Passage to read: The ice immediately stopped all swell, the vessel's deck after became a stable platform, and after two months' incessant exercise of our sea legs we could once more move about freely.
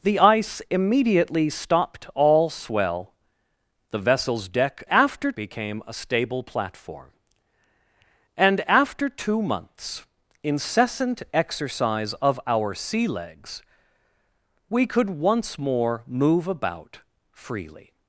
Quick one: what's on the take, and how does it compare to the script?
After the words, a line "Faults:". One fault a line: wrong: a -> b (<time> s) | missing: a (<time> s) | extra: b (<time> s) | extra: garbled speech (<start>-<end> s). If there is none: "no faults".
The ice immediately stopped all swell, the vessel's deck after became a stable platform, and after two months' incessant exercise of our sea legs we could once more move about freely.
Faults:
no faults